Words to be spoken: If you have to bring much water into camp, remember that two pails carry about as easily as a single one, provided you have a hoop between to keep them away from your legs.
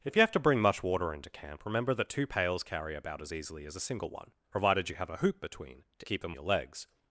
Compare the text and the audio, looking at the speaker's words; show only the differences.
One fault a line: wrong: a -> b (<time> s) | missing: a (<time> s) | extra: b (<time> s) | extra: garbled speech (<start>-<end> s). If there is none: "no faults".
missing: away from (6.4 s)